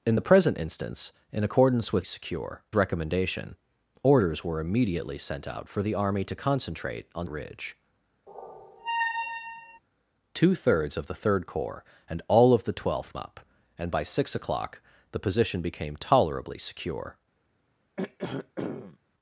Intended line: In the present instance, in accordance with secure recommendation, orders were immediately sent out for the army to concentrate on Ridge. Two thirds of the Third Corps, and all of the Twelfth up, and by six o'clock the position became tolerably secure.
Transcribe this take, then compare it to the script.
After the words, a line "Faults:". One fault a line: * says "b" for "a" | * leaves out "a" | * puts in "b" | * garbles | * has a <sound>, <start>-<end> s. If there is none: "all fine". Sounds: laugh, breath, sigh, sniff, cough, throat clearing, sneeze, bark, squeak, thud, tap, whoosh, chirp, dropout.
In the present instance, in accordance with secure recommendation, orders were immediately sent out for the army to concentrate on Ridge. Two thirds of the Third Corps, and all of the Twelfth up, and by six o'clock the position became tolerably secure.
Faults:
* has a squeak, 8.3-9.8 s
* has a throat clearing, 18.0-19.0 s